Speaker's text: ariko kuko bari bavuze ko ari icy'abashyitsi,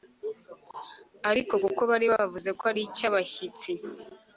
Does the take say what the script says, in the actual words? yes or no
yes